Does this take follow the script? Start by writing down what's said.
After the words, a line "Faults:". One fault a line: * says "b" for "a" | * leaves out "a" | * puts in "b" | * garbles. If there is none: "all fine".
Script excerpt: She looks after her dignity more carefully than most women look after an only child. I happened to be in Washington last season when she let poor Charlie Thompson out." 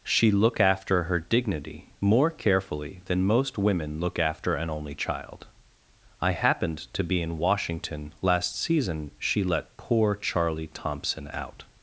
She look after her dignity more carefully than most women look after an only child. I happened to be in Washington last season she let poor Charlie Thompson out."
Faults:
* says "look" for "looks"
* leaves out "when"